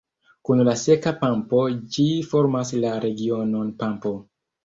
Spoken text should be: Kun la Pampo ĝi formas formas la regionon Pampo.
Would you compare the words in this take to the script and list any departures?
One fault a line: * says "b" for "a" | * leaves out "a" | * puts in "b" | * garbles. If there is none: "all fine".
* puts in "Seka"
* leaves out "formas"